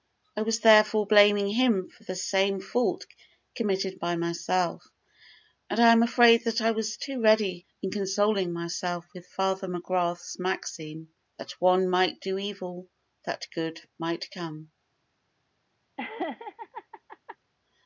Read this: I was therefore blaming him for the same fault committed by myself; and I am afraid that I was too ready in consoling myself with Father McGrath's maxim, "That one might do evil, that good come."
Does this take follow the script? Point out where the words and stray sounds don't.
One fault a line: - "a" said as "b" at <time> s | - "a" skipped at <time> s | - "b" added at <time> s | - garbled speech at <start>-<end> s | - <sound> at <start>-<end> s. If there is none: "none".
- "might" added at 14.0 s
- laugh at 16.0-17.4 s